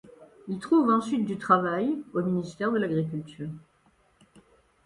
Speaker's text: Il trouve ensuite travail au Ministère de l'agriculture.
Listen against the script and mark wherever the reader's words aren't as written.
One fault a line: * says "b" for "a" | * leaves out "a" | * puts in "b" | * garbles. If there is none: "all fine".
* puts in "du"